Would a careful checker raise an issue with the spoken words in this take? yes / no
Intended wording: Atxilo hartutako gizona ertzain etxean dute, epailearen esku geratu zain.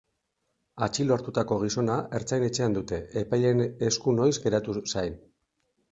yes